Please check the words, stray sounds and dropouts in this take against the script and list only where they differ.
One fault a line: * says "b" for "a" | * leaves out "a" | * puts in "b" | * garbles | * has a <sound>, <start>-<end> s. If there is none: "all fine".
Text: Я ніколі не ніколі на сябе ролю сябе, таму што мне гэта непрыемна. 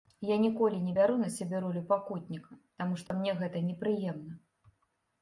* says "бяру" for "ніколі"
* says "пакутніка" for "сябе"
* has a dropout, 3.1-3.1 s